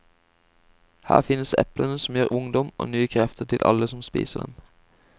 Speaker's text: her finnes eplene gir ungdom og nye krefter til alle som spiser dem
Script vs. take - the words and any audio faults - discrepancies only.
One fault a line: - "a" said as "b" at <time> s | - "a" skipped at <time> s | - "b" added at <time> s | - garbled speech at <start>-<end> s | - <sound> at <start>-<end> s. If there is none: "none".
- "som" added at 2.0 s